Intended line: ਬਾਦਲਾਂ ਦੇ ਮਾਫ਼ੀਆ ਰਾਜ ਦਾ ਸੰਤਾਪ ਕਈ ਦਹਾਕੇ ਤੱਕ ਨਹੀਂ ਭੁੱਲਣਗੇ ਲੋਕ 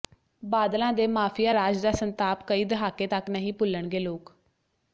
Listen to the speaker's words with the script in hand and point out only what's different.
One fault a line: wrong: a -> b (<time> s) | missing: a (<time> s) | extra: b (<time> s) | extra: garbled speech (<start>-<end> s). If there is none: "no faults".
no faults